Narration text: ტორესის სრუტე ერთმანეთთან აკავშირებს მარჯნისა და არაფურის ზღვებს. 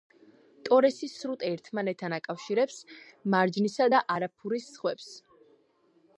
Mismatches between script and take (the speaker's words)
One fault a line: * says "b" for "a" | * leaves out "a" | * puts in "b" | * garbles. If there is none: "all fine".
all fine